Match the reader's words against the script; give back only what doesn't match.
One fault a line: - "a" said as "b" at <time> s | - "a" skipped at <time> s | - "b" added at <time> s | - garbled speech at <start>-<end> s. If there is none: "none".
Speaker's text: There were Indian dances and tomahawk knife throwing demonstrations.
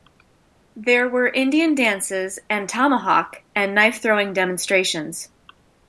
- "and" added at 3.5 s